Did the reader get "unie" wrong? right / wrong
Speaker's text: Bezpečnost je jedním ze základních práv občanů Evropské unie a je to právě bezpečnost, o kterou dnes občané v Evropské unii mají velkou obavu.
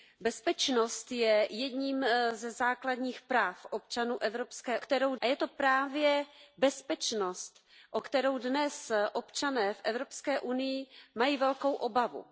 wrong